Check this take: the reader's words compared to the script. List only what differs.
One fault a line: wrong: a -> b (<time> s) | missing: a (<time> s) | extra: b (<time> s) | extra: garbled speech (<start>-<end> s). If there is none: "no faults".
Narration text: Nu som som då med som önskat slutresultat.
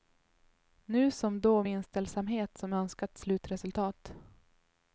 missing: som (1.4 s)
extra: inställsamhet (1.7 s)